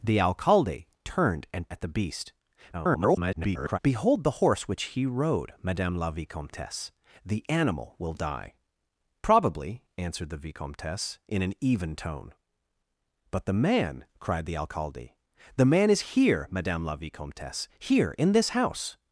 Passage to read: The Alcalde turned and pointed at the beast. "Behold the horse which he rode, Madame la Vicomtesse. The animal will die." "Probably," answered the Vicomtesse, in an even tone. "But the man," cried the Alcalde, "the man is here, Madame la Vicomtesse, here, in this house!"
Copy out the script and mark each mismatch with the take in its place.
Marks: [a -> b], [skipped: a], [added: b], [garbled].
The Alcalde turned and [skipped: pointed] at the beast. [garbled] "Behold the horse which he rode, Madame la Vicomtesse. The animal will die." "Probably," answered the Vicomtesse, in an even tone. "But the man," cried the Alcalde, "the man is here, Madame la Vicomtesse, here, in this house!"